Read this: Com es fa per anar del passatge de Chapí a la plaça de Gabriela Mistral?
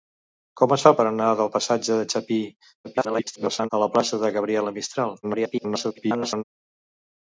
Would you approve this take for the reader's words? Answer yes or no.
no